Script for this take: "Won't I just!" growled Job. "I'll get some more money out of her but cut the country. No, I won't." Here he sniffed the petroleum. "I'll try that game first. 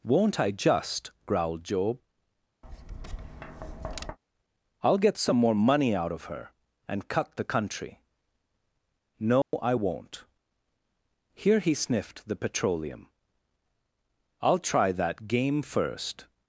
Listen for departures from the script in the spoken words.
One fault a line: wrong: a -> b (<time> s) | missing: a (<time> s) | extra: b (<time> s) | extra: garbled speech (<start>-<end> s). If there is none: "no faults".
wrong: but -> and (6.9 s)